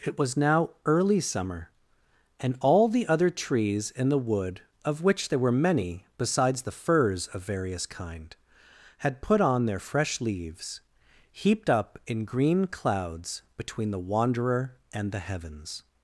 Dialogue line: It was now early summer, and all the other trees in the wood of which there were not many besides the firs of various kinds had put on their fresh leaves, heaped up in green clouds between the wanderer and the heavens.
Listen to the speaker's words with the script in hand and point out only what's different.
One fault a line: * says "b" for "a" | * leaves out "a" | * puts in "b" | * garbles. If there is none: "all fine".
* leaves out "not"
* says "kind" for "kinds"